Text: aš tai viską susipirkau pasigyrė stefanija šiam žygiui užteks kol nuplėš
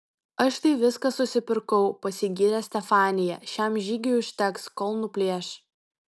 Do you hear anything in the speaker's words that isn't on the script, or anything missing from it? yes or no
no